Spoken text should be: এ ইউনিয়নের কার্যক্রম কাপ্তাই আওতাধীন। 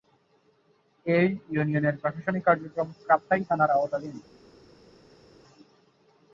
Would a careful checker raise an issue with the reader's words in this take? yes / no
yes